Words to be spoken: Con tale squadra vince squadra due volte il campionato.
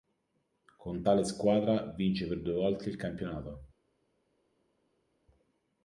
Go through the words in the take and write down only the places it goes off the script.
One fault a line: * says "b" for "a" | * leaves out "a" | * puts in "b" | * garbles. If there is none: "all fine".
* says "per" for "squadra"